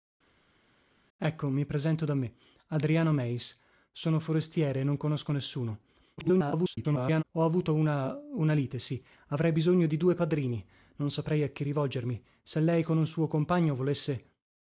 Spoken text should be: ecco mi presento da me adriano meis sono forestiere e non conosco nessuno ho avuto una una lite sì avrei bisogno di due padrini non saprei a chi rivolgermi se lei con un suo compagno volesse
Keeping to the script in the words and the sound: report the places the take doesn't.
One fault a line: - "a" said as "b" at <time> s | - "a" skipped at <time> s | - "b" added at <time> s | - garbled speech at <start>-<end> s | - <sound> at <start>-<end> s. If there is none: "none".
- garbled speech at 6.2-7.2 s